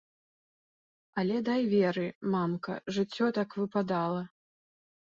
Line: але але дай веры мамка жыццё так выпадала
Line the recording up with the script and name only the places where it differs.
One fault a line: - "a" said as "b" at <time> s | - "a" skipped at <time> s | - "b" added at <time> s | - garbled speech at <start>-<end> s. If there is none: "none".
- "але" skipped at 1.4 s